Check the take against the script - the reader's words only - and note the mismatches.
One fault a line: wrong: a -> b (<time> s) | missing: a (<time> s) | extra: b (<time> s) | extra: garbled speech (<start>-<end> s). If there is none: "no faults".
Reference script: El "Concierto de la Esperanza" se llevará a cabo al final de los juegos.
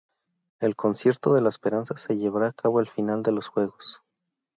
no faults